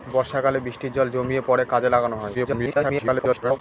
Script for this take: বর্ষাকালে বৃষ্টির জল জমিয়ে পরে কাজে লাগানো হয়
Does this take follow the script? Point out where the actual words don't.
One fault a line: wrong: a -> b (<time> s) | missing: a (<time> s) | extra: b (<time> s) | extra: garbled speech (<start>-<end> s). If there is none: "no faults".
extra: garbled speech (2.3-3.6 s)